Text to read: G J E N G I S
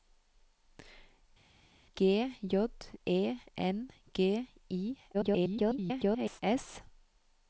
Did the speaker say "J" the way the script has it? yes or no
yes